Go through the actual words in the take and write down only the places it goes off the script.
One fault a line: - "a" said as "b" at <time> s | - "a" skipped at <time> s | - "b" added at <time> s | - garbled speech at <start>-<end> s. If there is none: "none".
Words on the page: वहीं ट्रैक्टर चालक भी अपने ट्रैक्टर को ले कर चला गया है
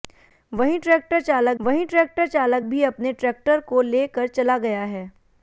- "वहीं ट्रैक्टर चालक" added at 1.6 s